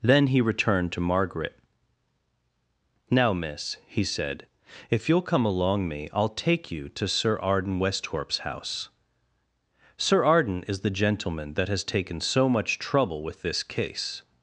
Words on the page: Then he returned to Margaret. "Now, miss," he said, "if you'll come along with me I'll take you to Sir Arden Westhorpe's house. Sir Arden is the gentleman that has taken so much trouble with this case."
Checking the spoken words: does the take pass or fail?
fail